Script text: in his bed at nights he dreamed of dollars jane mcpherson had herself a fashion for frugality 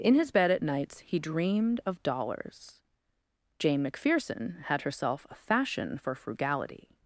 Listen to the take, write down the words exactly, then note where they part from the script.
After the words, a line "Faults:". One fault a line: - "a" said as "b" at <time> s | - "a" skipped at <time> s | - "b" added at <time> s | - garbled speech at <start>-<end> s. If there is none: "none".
in his bed at nights he dreamed of dollars jane mcpherson had herself a fashion for frugality
Faults:
none